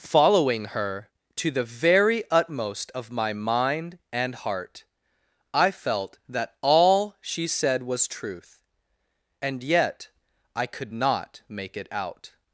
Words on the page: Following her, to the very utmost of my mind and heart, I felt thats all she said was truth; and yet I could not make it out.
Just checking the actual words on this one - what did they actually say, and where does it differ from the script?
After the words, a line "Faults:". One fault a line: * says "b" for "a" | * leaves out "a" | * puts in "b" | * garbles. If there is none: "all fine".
Following her, to the very utmost of my mind and heart, I felt that all she said was truth; and yet I could not make it out.
Faults:
* says "that" for "thats"